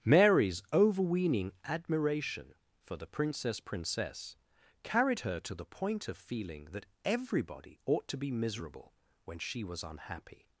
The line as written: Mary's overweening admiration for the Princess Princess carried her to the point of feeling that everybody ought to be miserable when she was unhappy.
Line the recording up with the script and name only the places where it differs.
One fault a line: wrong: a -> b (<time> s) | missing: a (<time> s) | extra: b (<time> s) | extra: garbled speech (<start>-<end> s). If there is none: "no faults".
no faults